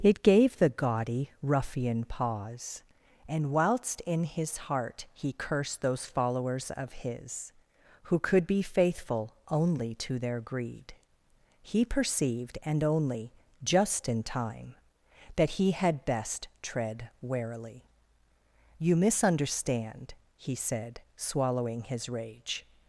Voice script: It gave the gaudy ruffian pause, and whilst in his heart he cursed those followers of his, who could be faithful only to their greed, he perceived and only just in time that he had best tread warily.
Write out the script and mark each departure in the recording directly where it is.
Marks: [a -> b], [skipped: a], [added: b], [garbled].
It gave the gaudy ruffian pause, and whilst in his heart he cursed those followers of his, who could be faithful only to their greed, he perceived and only just in time that he had best tread warily. [added: You misunderstand he said swallowing his rage]